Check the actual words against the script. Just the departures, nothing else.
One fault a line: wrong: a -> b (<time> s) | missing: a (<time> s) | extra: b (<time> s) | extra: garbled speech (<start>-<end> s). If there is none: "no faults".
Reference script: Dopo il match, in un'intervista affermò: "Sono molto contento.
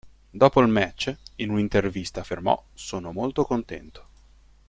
no faults